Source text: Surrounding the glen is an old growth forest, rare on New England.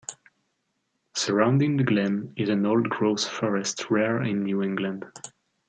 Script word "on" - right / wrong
wrong